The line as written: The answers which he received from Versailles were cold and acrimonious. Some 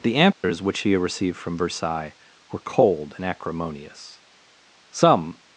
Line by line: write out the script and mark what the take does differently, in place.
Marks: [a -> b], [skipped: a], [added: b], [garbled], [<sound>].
The answers [dropout] which he received from Versailles were cold and acrimonious. Some